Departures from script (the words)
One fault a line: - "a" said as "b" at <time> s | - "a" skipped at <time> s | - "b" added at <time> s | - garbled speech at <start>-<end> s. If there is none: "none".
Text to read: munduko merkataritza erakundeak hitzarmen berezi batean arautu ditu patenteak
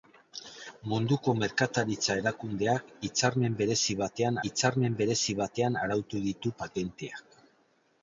- "hitzarmen berezi batean" added at 4.5 s